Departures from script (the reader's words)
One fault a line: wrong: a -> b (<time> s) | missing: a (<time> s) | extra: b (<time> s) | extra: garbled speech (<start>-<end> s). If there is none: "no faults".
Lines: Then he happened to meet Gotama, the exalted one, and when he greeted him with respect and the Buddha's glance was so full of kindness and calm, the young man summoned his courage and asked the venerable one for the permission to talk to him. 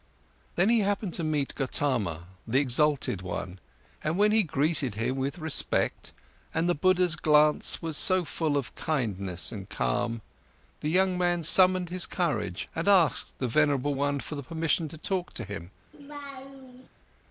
no faults